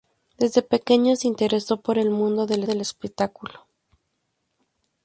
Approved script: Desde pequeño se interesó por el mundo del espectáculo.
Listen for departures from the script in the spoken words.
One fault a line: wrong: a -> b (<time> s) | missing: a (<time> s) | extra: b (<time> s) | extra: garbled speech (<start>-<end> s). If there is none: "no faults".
extra: del (2.6 s)